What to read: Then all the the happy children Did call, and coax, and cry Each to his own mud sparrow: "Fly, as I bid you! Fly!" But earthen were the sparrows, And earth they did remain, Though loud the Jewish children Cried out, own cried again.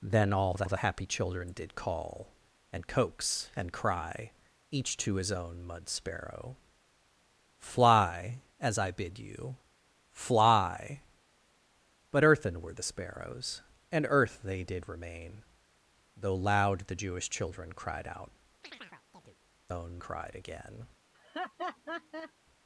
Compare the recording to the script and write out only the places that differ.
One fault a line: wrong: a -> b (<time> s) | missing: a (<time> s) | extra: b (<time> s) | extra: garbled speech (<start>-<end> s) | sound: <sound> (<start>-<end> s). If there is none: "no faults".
sound: chirp (18.6-19.4 s)
sound: laugh (21.1-22.3 s)